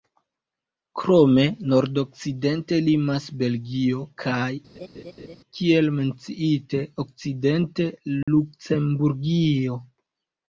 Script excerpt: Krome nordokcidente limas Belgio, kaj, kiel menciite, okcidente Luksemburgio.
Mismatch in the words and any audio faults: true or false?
true